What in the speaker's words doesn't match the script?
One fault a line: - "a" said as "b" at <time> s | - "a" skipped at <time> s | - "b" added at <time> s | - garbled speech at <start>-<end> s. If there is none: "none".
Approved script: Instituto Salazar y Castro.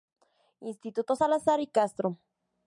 none